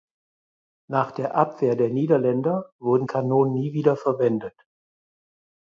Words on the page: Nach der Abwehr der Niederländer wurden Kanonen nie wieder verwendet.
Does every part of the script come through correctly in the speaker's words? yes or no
yes